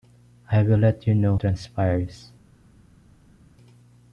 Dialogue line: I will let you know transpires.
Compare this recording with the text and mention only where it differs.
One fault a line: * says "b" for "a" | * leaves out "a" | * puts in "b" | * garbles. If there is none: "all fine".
all fine